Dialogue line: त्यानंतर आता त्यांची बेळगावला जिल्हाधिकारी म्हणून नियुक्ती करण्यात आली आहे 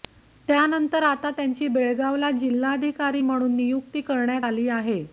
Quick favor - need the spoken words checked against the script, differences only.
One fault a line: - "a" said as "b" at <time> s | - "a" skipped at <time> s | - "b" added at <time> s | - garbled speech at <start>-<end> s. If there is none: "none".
none